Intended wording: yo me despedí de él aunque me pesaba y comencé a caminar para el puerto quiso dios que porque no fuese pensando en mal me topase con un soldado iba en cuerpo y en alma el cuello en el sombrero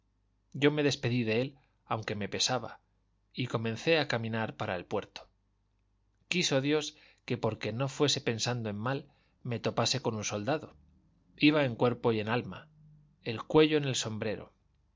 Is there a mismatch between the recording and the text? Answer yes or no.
no